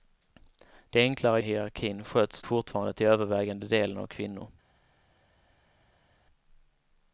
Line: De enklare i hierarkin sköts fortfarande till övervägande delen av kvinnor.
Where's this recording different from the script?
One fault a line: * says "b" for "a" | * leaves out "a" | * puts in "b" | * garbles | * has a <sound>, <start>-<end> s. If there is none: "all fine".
all fine